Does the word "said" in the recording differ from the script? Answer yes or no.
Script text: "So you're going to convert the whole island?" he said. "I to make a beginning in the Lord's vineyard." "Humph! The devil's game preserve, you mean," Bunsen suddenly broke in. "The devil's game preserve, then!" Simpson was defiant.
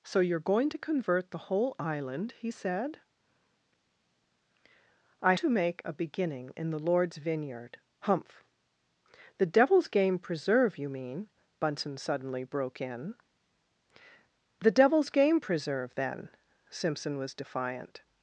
no